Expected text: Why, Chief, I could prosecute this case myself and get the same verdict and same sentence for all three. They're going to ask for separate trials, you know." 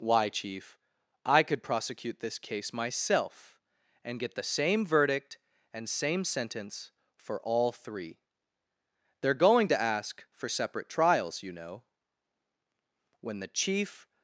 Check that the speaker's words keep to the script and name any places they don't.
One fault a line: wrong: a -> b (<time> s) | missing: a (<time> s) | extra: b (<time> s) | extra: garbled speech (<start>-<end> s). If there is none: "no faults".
extra: When the Chief (13.2 s)